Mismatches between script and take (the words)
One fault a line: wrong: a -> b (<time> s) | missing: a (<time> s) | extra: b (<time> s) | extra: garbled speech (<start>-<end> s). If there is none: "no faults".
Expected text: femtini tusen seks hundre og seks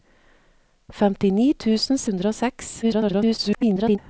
missing: seks (2.0 s)
extra: garbled speech (2.8-4.0 s)